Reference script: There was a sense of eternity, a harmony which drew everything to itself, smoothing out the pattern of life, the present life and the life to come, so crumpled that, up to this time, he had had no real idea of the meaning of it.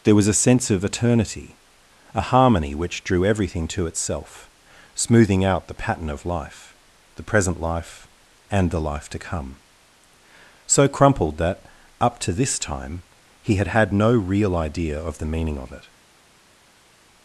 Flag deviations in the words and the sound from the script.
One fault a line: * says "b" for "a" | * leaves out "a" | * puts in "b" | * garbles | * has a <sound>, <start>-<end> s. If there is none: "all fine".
all fine